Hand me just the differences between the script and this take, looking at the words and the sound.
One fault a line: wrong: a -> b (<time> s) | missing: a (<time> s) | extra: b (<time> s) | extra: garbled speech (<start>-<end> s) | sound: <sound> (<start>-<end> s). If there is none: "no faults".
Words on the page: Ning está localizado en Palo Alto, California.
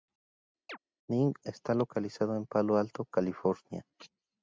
sound: chirp (0.7-0.8 s)